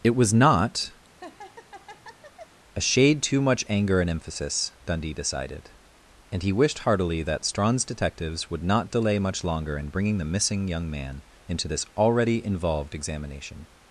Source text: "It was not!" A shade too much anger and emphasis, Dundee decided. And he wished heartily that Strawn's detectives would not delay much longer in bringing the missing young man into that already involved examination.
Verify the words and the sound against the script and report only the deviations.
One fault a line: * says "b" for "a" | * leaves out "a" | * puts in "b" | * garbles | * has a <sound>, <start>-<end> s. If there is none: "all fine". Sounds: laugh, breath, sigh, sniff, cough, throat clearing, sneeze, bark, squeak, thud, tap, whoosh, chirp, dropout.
* has a laugh, 1.0-2.6 s
* says "this" for "that"